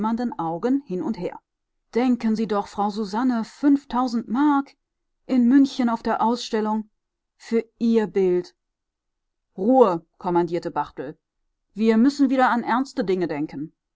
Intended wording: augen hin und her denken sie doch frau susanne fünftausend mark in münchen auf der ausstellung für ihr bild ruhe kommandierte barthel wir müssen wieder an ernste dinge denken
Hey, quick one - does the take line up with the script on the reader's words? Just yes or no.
yes